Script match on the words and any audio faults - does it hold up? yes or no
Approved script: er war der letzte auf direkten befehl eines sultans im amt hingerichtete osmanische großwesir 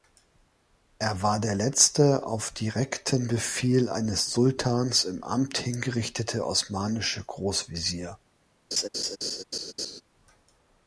no